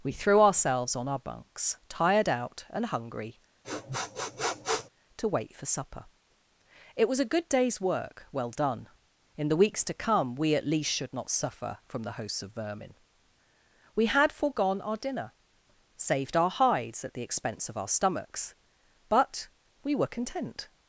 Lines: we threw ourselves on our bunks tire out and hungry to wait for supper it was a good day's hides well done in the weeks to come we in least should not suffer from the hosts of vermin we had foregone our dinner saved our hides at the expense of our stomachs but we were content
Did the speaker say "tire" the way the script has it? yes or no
no